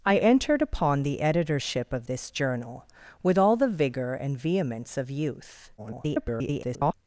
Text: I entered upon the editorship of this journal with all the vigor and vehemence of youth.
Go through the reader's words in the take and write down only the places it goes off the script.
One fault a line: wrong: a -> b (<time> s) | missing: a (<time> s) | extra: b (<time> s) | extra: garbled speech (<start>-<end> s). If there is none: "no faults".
extra: garbled speech (5.8-6.9 s)